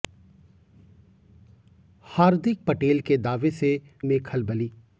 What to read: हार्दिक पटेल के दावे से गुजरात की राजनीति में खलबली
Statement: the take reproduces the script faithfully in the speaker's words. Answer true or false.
false